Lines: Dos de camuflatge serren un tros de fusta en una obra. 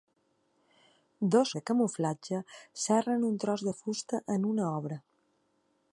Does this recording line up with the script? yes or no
yes